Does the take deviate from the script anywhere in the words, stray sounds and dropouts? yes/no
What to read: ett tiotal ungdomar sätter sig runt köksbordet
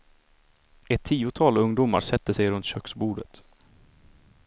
no